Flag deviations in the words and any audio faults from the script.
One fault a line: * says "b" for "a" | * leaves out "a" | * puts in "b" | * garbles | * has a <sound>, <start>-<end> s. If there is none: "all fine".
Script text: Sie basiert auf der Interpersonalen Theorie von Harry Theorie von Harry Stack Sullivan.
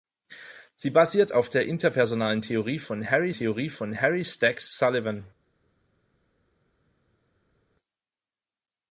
all fine